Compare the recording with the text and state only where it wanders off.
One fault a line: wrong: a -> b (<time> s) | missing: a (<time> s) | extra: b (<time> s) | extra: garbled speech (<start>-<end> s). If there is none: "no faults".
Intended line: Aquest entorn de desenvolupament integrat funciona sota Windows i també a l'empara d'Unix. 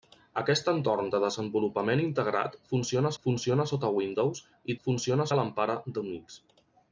extra: funciona (3.2 s)
wrong: també -> funciona (4.9 s)